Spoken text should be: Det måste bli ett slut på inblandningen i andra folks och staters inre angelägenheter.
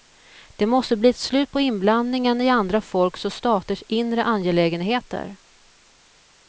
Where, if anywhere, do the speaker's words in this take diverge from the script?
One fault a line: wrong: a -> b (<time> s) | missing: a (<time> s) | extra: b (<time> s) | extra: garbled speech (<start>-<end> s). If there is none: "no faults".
no faults